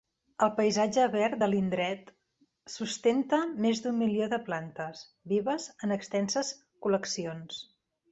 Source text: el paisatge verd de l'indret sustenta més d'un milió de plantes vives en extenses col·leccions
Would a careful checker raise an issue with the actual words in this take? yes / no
no